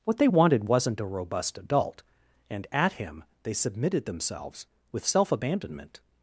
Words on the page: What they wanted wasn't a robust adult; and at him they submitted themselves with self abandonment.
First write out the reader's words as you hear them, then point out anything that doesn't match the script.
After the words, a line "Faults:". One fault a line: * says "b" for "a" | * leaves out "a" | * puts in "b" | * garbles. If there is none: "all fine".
What they wanted wasn't a robust adult; and at him they submitted themselves with self abandonment.
Faults:
all fine